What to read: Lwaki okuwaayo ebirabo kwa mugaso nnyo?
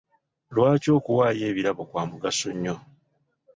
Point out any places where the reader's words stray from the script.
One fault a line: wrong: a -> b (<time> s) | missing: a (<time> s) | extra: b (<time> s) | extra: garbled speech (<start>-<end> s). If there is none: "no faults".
no faults